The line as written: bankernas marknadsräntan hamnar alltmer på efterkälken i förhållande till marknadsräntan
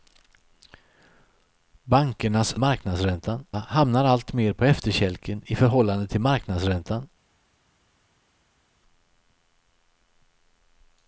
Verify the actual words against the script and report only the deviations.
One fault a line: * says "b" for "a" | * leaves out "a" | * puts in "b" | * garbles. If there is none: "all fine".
all fine